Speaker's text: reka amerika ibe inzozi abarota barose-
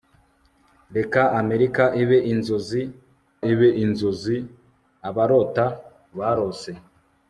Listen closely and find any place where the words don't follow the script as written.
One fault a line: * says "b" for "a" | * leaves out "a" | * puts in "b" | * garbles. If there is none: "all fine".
* puts in "ibe inzozi"